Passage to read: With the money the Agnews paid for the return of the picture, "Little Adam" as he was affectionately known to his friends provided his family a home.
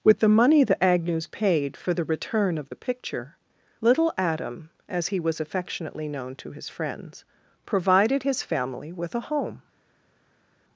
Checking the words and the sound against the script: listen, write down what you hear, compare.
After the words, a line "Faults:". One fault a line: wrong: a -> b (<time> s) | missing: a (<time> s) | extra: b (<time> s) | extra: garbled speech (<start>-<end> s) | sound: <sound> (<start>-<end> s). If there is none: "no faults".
With the money the Agnews paid for the return of the picture, "Little Adam" as he was affectionately known to his friends provided his family with a home.
Faults:
extra: with (8.9 s)